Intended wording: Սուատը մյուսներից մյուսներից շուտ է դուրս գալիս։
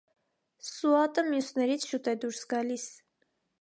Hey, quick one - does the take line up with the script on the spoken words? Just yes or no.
no